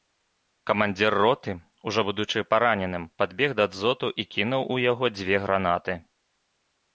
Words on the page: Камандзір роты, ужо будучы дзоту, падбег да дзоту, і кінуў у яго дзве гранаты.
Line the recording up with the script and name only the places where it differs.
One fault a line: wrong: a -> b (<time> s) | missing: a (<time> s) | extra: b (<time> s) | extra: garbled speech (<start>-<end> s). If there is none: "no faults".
wrong: дзоту -> параненым (2.5 s)